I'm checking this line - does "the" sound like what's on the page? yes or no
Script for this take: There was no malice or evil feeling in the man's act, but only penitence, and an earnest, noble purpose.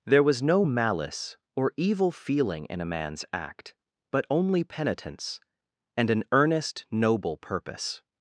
no